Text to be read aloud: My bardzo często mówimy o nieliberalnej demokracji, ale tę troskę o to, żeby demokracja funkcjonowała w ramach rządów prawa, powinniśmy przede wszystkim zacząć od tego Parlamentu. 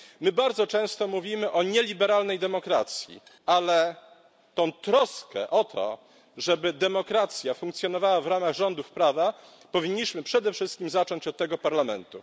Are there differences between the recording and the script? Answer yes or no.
no